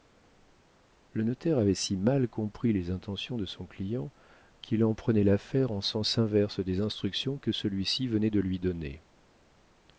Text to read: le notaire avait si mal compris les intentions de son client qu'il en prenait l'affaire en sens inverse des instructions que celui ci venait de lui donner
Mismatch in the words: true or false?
false